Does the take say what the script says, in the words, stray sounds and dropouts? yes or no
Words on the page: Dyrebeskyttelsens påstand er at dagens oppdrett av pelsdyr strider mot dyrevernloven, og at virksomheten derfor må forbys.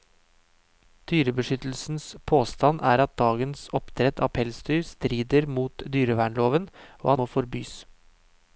no